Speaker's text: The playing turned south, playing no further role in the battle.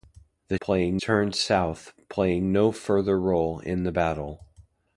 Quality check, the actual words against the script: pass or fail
pass